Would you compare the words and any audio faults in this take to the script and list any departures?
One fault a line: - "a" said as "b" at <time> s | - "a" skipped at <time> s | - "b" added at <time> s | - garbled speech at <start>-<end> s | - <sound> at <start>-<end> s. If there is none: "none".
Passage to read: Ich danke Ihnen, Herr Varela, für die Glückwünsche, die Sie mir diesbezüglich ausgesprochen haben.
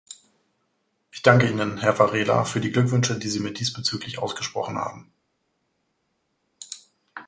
none